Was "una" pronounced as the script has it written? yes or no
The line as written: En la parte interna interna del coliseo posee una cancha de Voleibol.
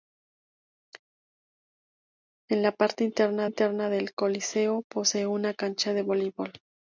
yes